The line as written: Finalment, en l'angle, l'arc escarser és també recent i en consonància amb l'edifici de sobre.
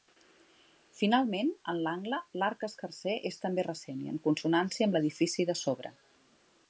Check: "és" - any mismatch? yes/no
no